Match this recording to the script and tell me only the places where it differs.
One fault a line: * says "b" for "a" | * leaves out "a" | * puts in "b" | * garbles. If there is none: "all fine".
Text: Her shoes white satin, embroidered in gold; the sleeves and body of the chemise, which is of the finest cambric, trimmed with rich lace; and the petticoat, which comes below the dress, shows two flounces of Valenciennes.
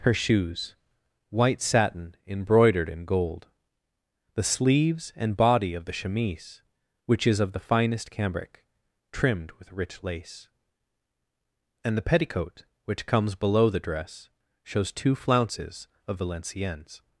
all fine